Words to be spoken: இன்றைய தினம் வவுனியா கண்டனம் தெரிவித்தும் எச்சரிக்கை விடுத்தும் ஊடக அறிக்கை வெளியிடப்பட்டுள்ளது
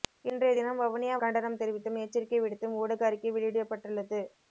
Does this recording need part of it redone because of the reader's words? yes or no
no